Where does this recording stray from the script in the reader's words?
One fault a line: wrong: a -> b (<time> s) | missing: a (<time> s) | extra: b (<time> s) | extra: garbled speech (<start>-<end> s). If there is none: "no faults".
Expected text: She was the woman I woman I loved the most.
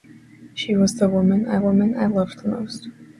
no faults